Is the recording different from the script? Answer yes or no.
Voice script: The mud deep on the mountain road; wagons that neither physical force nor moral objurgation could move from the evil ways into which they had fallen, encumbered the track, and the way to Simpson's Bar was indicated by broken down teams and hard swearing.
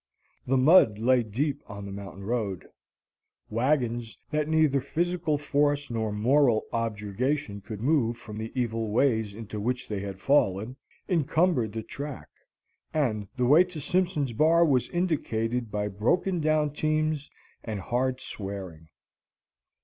yes